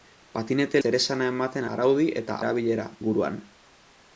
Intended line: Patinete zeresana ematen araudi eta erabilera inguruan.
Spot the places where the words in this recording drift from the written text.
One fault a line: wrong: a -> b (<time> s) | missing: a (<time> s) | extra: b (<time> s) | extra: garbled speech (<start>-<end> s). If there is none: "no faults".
no faults